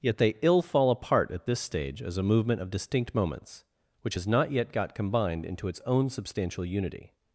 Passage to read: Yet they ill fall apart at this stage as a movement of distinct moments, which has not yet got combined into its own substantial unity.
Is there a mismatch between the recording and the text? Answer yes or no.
no